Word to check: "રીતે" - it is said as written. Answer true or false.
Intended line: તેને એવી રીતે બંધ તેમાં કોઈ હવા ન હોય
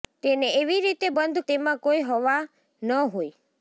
true